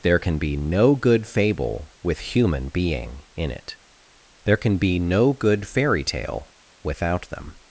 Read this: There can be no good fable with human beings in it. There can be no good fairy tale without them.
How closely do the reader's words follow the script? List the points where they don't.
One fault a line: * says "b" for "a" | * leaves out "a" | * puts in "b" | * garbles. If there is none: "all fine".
* says "being" for "beings"